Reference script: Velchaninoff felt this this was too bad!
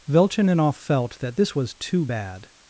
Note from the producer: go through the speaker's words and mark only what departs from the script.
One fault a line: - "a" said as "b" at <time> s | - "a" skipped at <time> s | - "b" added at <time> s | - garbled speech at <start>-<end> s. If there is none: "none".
- "this" said as "that" at 1.2 s